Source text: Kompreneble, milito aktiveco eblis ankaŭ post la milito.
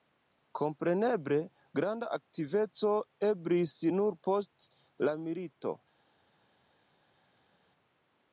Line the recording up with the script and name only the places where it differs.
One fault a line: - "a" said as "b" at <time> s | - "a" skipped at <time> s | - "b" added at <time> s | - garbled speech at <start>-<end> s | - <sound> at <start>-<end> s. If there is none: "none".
- "milito" said as "granda" at 1.8 s
- "ankaŭ" said as "nur" at 4.0 s